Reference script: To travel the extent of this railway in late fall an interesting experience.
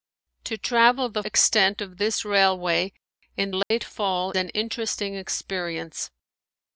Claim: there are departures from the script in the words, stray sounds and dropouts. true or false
true